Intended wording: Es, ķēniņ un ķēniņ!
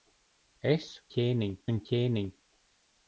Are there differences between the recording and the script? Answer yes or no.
no